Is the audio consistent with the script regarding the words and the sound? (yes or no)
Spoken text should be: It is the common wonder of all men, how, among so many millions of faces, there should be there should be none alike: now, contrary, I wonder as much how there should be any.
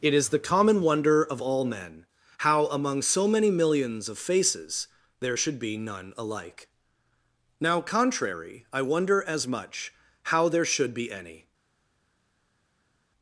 no